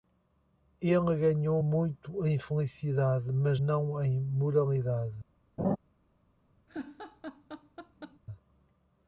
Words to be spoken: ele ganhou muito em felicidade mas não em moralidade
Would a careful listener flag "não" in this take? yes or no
no